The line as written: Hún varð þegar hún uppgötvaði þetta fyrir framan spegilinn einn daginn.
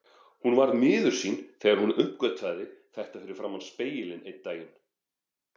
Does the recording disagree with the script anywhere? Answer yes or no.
yes